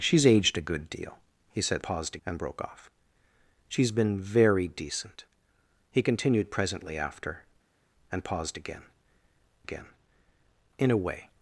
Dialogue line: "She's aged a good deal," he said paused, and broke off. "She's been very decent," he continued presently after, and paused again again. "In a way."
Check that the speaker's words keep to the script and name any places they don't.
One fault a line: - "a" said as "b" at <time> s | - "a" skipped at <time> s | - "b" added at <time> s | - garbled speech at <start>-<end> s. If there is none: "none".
none